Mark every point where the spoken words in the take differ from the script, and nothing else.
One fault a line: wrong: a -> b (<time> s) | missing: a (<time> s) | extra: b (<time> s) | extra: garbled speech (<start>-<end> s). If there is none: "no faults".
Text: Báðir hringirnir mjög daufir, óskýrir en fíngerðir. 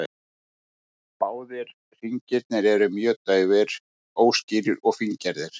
extra: eru (2.7 s)
wrong: en -> og (4.8 s)